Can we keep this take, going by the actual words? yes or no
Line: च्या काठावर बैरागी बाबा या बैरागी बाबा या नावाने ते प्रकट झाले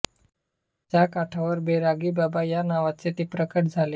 no